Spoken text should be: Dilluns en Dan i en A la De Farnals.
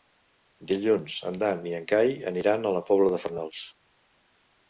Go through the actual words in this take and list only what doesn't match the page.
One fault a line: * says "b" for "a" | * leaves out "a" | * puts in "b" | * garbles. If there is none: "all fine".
* puts in "Cai aniran"
* puts in "Pobla"